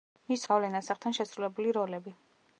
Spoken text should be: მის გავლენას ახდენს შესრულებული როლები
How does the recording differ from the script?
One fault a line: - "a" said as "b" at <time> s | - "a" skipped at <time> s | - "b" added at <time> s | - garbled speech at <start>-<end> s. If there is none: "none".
none